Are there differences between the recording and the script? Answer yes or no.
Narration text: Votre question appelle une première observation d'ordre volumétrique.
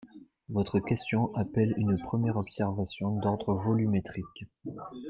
no